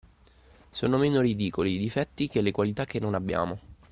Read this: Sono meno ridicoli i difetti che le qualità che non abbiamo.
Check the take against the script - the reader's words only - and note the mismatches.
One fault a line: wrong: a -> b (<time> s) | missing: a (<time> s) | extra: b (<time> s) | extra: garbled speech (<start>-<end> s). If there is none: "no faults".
no faults